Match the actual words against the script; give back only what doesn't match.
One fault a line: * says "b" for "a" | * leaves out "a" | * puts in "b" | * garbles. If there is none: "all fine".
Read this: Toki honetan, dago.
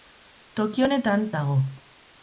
all fine